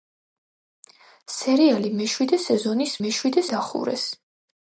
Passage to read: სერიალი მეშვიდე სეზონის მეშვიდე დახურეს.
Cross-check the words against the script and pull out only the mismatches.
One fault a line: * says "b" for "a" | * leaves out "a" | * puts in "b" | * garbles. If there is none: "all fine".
all fine